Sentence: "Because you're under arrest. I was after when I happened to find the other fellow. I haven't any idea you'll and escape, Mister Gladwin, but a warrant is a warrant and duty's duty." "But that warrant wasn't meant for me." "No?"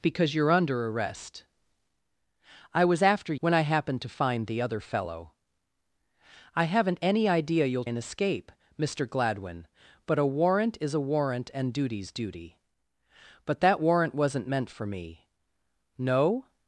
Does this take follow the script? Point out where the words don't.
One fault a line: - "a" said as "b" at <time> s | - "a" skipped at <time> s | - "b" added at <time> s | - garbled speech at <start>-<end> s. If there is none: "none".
none